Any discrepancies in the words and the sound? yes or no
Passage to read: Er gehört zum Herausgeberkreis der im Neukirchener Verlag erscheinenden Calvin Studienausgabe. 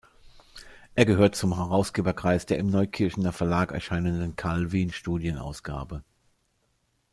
no